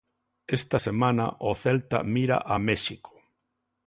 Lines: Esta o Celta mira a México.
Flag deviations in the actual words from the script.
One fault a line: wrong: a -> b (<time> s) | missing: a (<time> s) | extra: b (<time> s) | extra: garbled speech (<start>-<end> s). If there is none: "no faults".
extra: semana (0.8 s)